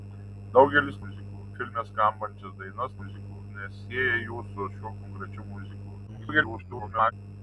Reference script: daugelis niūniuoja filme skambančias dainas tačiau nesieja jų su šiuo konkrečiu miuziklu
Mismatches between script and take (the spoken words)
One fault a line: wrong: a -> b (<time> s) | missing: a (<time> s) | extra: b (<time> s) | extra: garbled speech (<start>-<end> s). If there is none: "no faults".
wrong: niūniuoja -> miuziklu (1.0 s)
wrong: tačiau -> miuziklu (3.0 s)
extra: garbled speech (6.1-7.1 s)